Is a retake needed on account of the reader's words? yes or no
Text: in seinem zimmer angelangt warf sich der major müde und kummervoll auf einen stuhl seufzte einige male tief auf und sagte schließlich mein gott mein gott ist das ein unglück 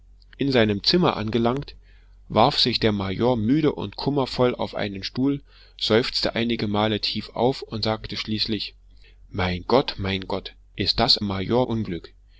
yes